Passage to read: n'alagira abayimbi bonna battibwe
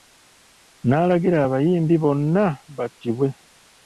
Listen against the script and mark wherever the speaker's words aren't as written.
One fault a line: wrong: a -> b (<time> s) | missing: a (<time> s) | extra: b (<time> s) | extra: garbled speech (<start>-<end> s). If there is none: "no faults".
no faults